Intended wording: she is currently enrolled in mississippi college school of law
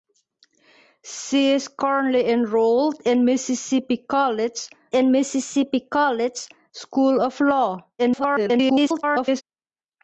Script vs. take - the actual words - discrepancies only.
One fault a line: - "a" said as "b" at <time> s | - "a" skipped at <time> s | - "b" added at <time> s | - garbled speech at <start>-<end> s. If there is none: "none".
- "in mississippi college" added at 4.9 s
- garbled speech at 8.0-9.4 s